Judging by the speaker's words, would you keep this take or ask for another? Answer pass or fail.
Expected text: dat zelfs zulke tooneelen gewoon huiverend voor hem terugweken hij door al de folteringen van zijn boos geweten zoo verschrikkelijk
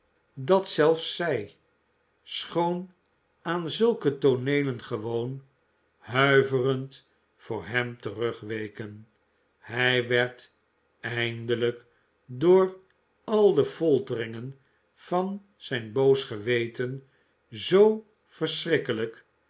fail